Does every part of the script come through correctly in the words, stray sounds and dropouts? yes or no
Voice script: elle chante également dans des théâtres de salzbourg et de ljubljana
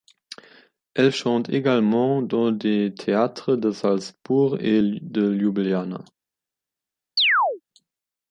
no